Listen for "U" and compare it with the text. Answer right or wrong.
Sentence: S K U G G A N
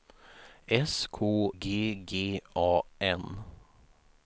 wrong